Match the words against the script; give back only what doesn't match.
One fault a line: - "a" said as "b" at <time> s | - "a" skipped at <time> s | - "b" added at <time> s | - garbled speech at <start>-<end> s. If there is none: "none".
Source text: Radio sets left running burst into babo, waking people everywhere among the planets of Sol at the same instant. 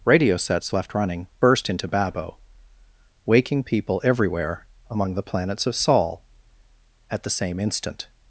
none